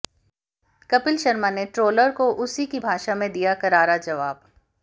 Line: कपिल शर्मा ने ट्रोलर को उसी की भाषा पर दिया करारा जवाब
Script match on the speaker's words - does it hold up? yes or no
no